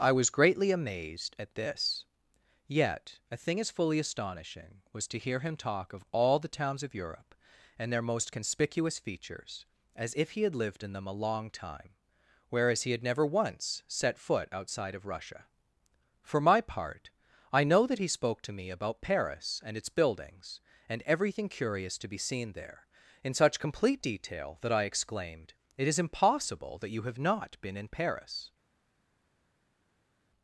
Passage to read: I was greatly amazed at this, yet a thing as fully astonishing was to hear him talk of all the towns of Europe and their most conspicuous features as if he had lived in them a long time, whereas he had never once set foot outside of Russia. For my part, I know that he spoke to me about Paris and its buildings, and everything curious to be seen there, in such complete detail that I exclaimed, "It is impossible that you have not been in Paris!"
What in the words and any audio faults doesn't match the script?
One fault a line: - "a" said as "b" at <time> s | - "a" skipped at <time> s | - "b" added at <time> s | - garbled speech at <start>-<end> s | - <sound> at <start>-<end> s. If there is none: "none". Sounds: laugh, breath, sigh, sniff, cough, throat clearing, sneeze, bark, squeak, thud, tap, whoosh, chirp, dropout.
none